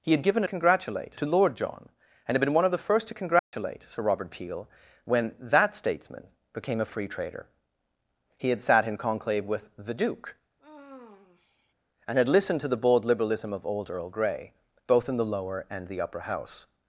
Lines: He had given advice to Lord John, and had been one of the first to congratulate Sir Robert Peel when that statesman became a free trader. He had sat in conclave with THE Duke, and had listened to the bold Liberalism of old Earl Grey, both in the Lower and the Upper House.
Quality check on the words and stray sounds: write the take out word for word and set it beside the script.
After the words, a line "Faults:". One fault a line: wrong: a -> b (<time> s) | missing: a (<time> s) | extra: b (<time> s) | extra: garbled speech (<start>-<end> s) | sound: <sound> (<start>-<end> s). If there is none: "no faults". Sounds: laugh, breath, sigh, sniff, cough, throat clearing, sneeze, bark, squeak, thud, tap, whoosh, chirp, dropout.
He had given congratulate to Lord John, and had been one of the first to congratulate Sir Robert Peel when that statesman became a free trader. He had sat in conclave with THE Duke, and had listened to the bold Liberalism of old Earl Grey, both in the Lower and the Upper House.
Faults:
wrong: advice -> congratulate (0.4 s)
sound: dropout (3.4-3.5 s)
sound: sigh (10.6-11.7 s)